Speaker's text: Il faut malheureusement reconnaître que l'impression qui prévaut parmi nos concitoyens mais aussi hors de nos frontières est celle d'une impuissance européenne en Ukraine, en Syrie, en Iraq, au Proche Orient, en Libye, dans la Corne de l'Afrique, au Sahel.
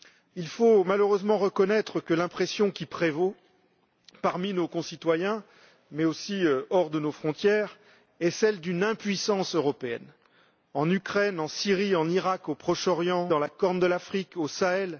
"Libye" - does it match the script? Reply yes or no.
no